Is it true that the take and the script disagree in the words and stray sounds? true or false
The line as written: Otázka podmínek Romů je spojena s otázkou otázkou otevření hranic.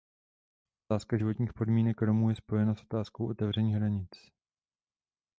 true